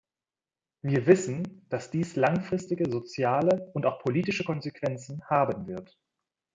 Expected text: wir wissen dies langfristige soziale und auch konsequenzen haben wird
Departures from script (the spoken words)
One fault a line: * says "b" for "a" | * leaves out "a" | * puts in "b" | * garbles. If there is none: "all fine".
* puts in "dass"
* puts in "politische"